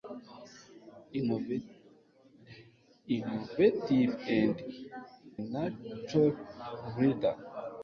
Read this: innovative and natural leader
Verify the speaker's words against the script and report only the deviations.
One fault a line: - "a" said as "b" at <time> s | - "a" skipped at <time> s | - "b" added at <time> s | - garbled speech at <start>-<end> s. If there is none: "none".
none